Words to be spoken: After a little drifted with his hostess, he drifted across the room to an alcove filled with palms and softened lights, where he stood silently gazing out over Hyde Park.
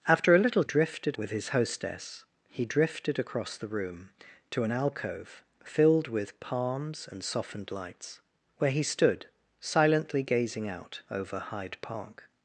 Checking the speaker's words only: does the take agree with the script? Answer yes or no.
yes